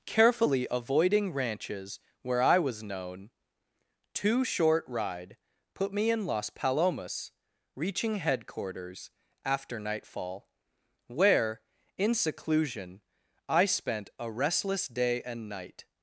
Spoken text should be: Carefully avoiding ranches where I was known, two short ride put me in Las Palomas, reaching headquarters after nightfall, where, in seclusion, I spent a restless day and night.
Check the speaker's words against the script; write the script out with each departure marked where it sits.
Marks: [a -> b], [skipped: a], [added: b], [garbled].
Carefully avoiding ranches where I was known, two short ride put me in Las Palomas, reaching headquarters after nightfall, where, in seclusion, I spent a restless day and night.